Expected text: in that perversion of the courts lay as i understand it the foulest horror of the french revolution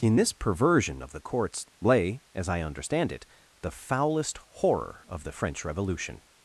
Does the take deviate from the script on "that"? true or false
true